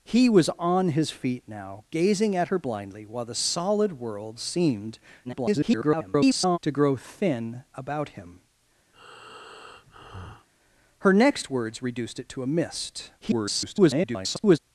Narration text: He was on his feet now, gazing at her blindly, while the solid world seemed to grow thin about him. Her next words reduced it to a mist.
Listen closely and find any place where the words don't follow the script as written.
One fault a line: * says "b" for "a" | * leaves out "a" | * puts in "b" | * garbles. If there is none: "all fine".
* garbles
* garbles